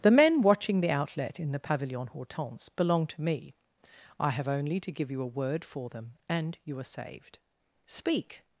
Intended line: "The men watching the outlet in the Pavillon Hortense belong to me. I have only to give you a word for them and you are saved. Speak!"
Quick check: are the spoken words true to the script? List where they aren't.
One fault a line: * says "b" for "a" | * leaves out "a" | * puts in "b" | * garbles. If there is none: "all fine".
all fine